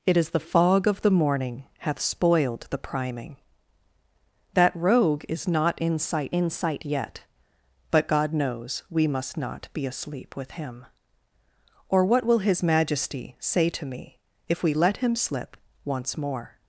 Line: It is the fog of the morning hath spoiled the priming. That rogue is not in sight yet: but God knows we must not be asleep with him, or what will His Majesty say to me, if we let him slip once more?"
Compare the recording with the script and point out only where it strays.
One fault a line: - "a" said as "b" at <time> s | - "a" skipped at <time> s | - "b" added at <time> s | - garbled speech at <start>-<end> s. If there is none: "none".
- "in sight" added at 6.3 s